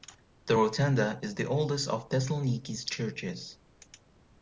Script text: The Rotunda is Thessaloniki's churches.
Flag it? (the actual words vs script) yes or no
yes